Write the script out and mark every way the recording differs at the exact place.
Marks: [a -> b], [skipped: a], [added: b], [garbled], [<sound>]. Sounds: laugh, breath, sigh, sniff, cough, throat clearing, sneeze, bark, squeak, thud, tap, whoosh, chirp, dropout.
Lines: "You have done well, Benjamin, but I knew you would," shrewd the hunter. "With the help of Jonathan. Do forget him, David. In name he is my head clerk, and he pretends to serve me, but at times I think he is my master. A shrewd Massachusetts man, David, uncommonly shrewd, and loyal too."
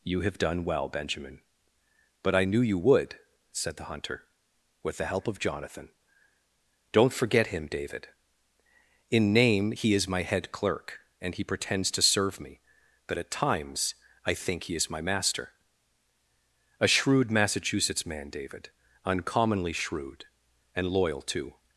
"You have done well, Benjamin, but I knew you would," [shrewd -> said] the hunter. "With the help of Jonathan. [Do -> Don't] forget him, David. In name he is my head clerk, and he pretends to serve me, but at times I think he is my master. A shrewd Massachusetts man, David, uncommonly shrewd, and loyal too."